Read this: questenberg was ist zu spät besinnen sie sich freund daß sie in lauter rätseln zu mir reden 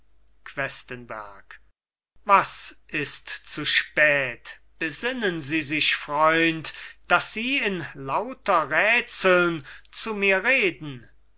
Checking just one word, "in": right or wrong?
right